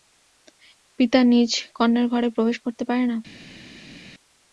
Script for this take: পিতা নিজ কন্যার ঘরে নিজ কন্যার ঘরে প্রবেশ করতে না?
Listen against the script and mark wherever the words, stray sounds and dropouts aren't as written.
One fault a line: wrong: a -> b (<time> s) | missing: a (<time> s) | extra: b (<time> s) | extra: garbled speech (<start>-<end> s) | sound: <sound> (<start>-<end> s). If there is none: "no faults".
missing: নিজ কন্যার ঘরে (2.3 s)
extra: পারে (2.9 s)